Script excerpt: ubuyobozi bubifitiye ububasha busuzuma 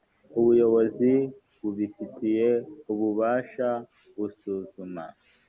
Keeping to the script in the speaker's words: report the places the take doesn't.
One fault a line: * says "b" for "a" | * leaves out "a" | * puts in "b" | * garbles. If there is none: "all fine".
all fine